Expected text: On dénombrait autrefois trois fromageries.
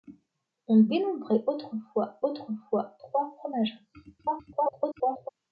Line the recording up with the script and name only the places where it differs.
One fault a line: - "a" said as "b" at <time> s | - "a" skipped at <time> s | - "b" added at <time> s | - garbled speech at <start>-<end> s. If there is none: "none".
- "autrefois" added at 2.2 s
- garbled speech at 4.2-5.3 s